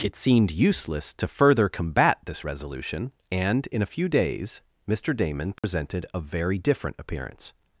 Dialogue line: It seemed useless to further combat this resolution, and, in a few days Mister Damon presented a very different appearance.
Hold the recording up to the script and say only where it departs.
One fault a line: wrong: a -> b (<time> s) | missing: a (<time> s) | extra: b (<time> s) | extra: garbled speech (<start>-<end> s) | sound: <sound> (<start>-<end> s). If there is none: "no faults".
sound: dropout (5.6-5.6 s)